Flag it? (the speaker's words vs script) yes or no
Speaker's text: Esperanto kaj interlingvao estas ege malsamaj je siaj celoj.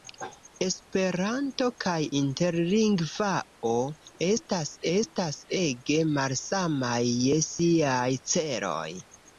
yes